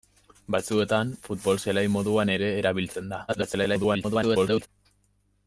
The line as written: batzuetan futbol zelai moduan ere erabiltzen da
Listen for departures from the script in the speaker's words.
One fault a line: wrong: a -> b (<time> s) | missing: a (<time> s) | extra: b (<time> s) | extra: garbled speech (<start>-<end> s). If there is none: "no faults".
extra: garbled speech (3.3-4.7 s)